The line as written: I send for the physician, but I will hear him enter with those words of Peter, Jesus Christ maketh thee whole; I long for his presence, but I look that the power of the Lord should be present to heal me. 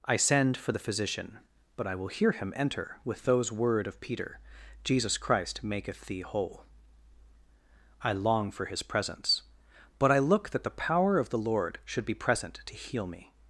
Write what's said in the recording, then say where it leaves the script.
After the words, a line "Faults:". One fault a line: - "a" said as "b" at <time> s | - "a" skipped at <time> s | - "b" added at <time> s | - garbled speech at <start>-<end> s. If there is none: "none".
I send for the physician, but I will hear him enter with those word of Peter, Jesus Christ maketh thee whole; I long for his presence, but I look that the power of the Lord should be present to heal me.
Faults:
- "words" said as "word" at 3.5 s